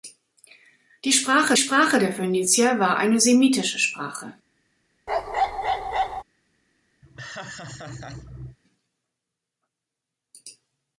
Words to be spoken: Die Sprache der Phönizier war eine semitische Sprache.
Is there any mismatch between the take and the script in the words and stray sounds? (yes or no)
yes